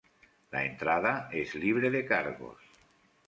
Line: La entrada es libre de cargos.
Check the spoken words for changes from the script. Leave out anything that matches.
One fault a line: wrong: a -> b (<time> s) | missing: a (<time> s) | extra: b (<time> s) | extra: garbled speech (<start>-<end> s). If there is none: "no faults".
no faults